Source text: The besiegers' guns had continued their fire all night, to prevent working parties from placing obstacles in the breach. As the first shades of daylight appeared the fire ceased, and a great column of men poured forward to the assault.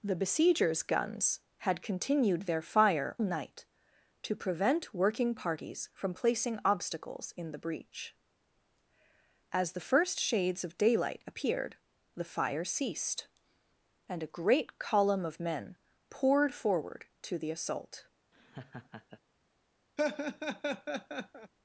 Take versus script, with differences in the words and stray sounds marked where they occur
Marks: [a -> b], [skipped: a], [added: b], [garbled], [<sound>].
The besiegers' guns had continued their fire [skipped: all] night, to prevent working parties from placing obstacles in the breach. As the first shades of daylight appeared the fire ceased, and a great column of men poured forward to the assault. [laugh] [laugh]